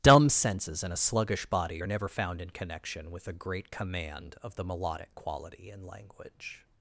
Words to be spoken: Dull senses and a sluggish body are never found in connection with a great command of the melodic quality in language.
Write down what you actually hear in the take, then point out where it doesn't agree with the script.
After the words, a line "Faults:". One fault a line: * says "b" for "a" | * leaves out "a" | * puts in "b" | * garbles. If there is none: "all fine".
Dumb senses and a sluggish body are never found in connection with a great command of the melodic quality in language.
Faults:
* says "Dumb" for "Dull"